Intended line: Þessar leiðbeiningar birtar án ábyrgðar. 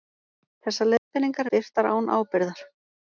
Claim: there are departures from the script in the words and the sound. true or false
true